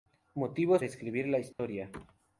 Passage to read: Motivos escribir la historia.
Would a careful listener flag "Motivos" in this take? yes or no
no